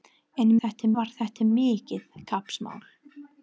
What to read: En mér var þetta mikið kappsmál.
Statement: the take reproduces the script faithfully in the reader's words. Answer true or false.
false